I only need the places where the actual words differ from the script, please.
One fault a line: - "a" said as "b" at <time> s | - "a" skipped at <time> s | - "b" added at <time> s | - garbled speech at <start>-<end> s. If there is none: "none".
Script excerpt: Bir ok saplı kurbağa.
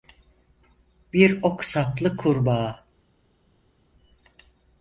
none